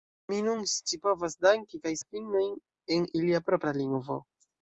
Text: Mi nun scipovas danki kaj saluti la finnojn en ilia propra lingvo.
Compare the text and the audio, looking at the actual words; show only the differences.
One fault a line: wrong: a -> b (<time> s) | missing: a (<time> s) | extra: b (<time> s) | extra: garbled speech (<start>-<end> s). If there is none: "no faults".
missing: saluti (1.9 s)